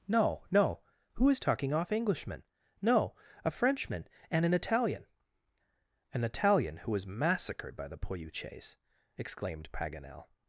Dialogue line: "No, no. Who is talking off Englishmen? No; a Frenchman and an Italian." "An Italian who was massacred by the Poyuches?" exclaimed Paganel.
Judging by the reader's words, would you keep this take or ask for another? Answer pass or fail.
pass